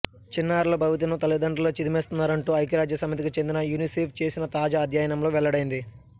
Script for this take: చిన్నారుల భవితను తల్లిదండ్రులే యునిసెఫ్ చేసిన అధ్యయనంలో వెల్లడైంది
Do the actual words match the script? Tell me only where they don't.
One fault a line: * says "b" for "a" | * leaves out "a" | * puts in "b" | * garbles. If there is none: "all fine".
* puts in "చిదిమేస్తున్నారంటూ ఐక్యరాజ్యసమితికి చెందిన"
* puts in "తాజా"